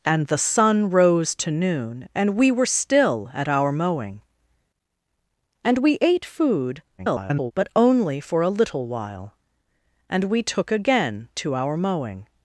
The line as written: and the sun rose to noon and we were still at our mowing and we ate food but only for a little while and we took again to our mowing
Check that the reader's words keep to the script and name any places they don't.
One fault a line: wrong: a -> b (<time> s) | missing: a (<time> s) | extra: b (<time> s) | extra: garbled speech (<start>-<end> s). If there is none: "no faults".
extra: garbled speech (7.0-7.5 s)